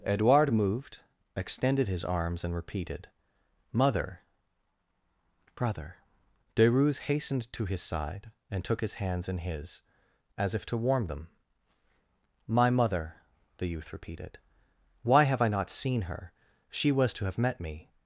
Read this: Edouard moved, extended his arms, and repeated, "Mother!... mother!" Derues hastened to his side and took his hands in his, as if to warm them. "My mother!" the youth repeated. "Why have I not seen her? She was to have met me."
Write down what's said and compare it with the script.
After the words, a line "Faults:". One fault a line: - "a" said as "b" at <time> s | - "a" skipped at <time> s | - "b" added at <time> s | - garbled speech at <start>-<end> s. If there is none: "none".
Edouard moved, extended his arms, and repeated, "Mother!... brother!" Derues hastened to his side and took his hands in his, as if to warm them. "My mother!" the youth repeated. "Why have I not seen her? She was to have met me."
Faults:
- "mother" said as "brother" at 5.5 s